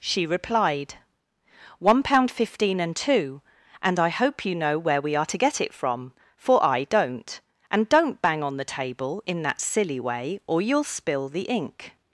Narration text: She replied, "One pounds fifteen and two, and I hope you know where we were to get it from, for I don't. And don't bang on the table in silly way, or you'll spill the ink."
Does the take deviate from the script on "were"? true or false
true